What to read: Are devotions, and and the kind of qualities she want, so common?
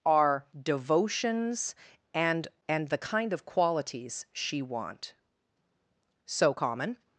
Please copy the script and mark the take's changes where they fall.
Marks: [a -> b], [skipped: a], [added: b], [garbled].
Are devotions, and and the kind of qualities she want, so common?